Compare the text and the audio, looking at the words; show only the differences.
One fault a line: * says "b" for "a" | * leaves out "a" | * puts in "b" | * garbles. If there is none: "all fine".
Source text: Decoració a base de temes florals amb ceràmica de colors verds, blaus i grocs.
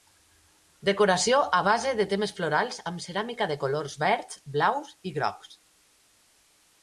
all fine